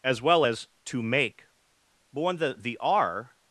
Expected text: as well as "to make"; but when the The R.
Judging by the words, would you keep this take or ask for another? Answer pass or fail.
pass